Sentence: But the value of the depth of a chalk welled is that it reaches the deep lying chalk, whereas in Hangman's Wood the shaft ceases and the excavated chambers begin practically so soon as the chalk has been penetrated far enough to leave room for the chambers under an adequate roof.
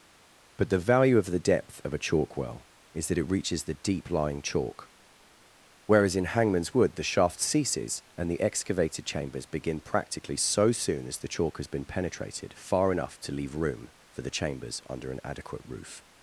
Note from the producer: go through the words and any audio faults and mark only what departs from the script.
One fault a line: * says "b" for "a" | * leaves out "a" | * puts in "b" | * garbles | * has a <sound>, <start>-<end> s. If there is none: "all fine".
* says "well" for "welled"